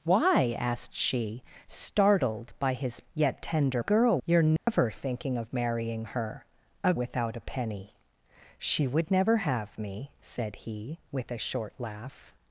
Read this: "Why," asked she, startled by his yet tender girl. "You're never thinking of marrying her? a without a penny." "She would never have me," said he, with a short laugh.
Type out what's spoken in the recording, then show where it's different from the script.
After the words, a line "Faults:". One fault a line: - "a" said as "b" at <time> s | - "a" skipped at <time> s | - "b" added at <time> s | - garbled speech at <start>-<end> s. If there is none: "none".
"Why," asked she, startled by his yet tender girl. "You're never thinking of marrying her? a without a penny." "She would never have me," said he, with a short laugh.
Faults:
none